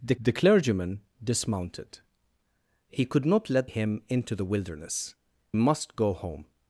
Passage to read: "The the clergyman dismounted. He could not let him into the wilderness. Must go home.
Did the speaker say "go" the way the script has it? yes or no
yes